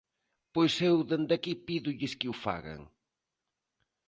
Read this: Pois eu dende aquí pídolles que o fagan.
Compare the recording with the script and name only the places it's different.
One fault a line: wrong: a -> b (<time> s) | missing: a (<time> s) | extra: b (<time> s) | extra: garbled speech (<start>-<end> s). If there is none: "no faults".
no faults